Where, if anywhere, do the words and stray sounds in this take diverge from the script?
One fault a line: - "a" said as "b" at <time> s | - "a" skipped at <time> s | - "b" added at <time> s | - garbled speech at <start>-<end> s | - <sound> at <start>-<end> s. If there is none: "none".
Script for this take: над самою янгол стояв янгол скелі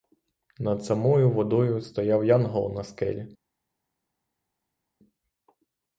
- "янгол" said as "водою" at 1.3 s
- "на" added at 2.7 s